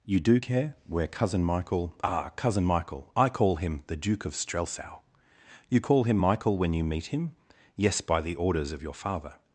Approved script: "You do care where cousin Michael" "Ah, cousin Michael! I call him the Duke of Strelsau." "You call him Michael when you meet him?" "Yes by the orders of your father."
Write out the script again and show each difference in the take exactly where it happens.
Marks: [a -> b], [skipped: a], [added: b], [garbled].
"You do care where cousin Michael" "Ah, cousin Michael! I call him the Duke of Strelsau." "You call him Michael when you meet him?" "Yes by the orders of your father."